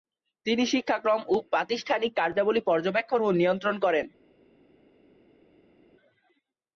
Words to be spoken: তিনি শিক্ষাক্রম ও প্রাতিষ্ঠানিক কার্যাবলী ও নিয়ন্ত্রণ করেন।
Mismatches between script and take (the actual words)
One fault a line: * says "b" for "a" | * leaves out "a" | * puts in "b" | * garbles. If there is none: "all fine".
* puts in "পর্যবেক্ষণ"